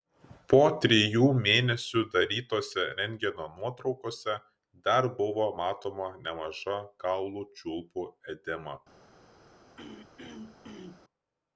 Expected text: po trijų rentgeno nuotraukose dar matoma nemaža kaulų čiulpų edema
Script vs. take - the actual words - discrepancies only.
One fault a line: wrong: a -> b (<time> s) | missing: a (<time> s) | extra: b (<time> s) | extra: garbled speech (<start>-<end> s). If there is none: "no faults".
extra: mėnesių darytose (1.5 s)
extra: buvo (5.2 s)